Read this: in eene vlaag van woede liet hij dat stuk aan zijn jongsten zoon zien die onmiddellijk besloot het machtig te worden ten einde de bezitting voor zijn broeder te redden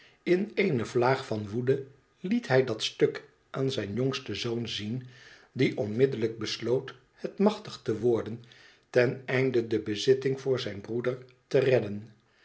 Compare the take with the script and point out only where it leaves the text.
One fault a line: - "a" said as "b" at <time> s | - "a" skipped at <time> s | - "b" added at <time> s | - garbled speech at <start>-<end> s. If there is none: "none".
none